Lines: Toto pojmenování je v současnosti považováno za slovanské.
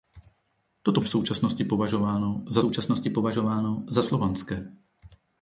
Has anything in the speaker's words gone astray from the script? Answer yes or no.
yes